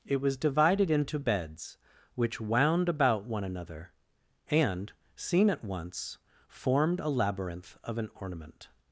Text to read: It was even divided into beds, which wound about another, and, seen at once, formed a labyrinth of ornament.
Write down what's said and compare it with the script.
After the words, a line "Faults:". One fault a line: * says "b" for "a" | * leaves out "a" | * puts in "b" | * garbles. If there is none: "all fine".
It was divided into beds, which wound about one another, and, seen at once, formed a labyrinth of an ornament.
Faults:
* leaves out "even"
* puts in "one"
* puts in "an"